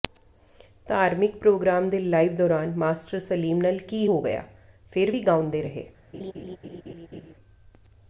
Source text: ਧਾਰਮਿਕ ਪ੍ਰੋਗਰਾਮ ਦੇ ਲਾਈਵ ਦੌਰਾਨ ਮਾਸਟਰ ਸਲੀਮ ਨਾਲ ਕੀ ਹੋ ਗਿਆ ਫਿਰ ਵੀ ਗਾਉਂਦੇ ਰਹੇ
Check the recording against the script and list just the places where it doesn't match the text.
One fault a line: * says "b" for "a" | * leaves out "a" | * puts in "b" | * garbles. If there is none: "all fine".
all fine